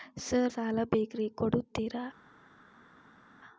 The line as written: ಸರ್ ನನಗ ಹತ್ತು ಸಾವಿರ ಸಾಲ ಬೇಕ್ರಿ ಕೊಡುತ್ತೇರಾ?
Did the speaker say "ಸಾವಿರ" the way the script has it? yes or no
no